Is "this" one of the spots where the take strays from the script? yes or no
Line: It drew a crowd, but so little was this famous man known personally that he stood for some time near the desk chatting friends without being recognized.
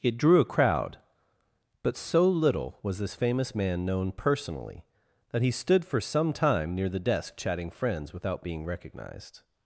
no